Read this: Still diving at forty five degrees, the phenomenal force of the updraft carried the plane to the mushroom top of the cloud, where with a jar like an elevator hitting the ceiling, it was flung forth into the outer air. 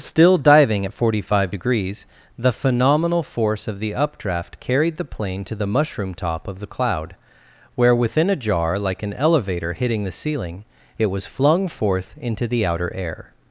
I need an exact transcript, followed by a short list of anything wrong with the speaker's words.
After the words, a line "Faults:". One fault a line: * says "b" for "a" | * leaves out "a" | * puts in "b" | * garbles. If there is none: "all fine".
Still diving at forty five degrees, the phenomenal force of the updraft carried the plane to the mushroom top of the cloud, where within a jar like an elevator hitting the ceiling, it was flung forth into the outer air.
Faults:
* says "within" for "with"